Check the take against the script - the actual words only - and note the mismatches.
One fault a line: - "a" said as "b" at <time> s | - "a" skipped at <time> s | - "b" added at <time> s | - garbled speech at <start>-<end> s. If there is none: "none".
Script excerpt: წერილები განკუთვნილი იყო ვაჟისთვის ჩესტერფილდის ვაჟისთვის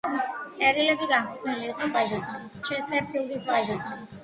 none